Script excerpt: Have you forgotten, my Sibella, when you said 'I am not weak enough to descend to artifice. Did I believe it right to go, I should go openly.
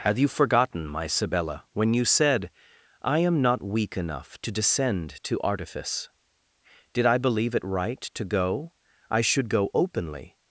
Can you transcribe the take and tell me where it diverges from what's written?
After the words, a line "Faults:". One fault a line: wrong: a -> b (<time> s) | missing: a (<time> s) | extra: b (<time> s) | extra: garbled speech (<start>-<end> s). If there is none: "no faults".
Have you forgotten, my Sibella, when you said 'I am not weak enough to descend to artifice. Did I believe it right to go, I should go openly.
Faults:
no faults